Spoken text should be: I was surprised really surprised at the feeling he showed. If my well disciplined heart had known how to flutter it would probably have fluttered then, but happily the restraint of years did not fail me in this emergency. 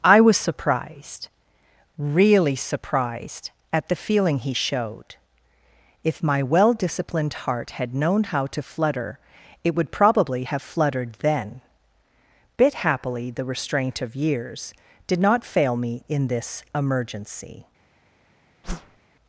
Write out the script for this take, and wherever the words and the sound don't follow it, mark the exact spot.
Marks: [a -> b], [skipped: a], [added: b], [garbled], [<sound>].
I was surprised really surprised at the feeling he showed. If my well disciplined heart had known how to flutter it would probably have fluttered then, [but -> bit] happily the restraint of years did not fail me in this emergency. [whoosh]